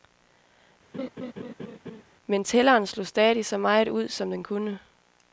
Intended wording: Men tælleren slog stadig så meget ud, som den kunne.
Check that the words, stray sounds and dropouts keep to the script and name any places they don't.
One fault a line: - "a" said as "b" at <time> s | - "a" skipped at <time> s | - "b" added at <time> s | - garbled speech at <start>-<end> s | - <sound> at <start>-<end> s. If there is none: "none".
- laugh at 0.9-2.0 s